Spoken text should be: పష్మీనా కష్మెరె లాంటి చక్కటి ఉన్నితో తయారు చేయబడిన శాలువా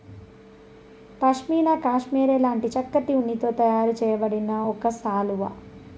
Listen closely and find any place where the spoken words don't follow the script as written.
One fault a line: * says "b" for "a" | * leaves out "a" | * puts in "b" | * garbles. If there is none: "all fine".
* puts in "ఒక"